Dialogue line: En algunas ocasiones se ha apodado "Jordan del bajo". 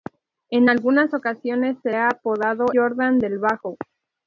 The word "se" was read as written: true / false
true